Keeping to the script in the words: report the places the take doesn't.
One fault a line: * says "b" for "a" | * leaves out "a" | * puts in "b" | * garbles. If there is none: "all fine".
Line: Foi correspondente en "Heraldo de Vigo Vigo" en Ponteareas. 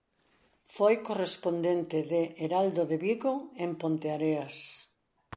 * says "de" for "en"
* leaves out "Vigo"